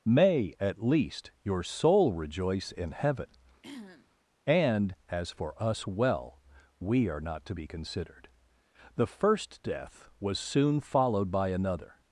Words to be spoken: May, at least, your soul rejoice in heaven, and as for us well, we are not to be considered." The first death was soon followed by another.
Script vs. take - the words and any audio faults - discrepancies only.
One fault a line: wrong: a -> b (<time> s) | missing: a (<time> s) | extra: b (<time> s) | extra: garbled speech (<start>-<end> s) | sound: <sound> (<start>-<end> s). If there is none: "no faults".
sound: throat clearing (3.6-4.1 s)